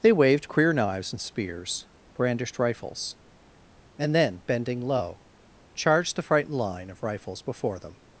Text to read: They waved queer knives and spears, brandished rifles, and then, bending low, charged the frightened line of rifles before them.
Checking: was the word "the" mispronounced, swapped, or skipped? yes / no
no